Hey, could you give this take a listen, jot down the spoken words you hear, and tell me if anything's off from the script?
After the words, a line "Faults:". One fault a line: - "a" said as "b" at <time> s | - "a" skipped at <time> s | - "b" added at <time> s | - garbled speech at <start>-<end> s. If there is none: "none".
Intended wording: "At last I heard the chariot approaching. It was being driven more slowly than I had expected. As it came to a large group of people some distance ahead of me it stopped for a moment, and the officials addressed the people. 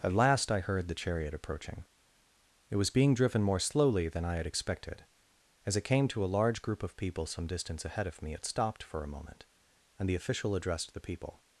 "At last I heard the chariot approaching. It was being driven more slowly than I had expected. As it came to a large group of people some distance ahead of me it stopped for a moment, and the official addressed the people.
Faults:
- "officials" said as "official" at 10.2 s